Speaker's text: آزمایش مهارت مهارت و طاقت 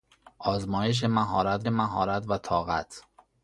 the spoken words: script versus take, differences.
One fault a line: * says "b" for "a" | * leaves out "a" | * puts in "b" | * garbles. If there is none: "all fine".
all fine